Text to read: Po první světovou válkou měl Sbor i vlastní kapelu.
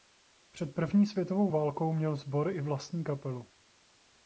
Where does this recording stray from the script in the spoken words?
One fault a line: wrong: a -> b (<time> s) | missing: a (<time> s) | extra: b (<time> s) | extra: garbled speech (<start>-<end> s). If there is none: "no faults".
wrong: Po -> Před (0.5 s)